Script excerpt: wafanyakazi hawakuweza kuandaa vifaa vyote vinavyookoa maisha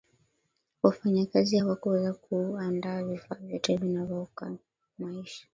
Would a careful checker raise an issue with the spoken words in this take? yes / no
no